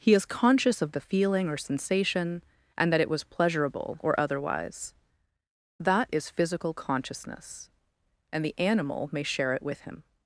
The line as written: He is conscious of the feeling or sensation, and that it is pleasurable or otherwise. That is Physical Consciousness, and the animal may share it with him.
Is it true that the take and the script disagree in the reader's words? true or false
true